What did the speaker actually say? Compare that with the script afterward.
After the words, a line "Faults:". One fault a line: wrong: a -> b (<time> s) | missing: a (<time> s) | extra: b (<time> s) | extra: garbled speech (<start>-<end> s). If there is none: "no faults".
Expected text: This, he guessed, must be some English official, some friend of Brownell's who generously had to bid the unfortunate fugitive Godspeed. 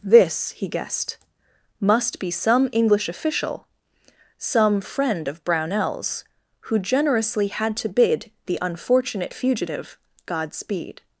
This, he guessed, must be some English official, some friend of Brownell's who generously had to bid the unfortunate fugitive Godspeed.
Faults:
no faults